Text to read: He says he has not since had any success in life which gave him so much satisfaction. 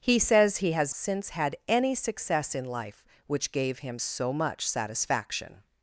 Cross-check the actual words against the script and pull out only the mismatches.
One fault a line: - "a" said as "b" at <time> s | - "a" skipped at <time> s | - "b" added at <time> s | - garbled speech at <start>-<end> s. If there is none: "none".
- "not" skipped at 0.9 s